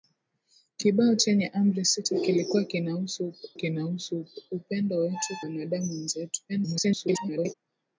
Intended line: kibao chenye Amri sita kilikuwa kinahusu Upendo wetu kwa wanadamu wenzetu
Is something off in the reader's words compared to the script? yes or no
yes